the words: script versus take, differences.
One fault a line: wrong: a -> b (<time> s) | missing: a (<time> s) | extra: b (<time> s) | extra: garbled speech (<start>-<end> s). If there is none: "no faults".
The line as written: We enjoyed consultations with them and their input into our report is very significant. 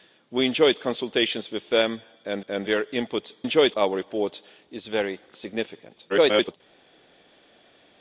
extra: and (2.5 s)
wrong: into -> enjoyed (3.4 s)
extra: garbled speech (6.1-6.6 s)